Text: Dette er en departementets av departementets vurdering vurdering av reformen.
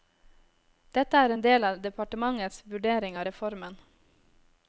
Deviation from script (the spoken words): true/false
true